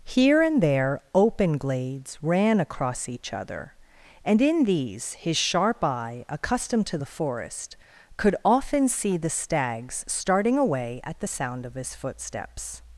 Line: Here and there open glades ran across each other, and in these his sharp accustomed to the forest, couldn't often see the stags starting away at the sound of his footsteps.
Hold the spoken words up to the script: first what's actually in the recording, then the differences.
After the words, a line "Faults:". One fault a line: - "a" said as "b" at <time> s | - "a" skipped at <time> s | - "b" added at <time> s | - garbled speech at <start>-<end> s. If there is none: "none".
Here and there open glades ran across each other, and in these his sharp eye, accustomed to the forest, could often see the stags starting away at the sound of his footsteps.
Faults:
- "eye" added at 5.8 s
- "couldn't" said as "could" at 8.2 s